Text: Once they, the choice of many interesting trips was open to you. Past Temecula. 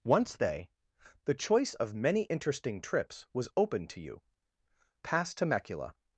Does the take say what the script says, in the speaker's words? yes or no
yes